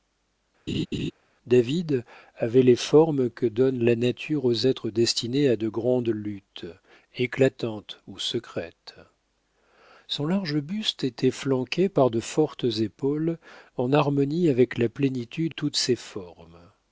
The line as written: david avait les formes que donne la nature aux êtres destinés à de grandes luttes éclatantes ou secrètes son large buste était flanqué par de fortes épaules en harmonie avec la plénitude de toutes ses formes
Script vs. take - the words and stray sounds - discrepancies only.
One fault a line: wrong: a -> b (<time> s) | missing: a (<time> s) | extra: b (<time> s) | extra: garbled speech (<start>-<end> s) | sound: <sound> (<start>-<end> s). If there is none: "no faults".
sound: laugh (0.7-1.1 s)
missing: de (15.5 s)